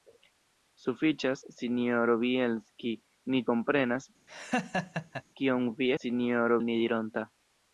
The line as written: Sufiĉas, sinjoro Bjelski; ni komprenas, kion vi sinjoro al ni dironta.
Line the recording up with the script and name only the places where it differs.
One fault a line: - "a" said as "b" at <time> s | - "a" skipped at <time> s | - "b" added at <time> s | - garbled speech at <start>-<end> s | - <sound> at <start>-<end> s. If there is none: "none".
- laugh at 4.3-5.2 s